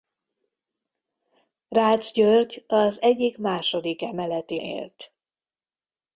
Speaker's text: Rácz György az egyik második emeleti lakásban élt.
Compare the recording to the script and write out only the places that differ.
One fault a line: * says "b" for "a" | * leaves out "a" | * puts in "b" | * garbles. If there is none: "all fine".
* leaves out "lakásban"